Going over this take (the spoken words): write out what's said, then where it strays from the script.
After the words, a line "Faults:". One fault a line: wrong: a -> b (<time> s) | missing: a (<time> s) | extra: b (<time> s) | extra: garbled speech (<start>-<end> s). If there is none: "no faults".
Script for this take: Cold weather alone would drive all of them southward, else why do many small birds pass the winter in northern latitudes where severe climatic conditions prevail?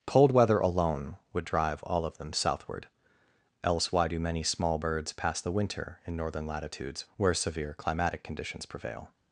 Cold weather alone would drive all of them southward, else why do many small birds pass the winter in northern latitudes where severe climatic conditions prevail?
Faults:
no faults